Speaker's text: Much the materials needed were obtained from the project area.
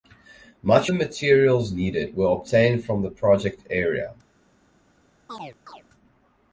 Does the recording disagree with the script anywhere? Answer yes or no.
no